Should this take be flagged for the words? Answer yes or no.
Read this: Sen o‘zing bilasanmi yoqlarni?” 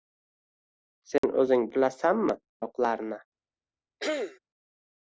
no